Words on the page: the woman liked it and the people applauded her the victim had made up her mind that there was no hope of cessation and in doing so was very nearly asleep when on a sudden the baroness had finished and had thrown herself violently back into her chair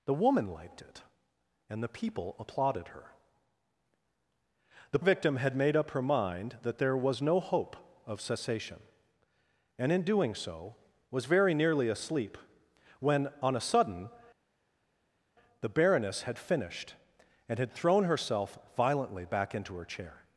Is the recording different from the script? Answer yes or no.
no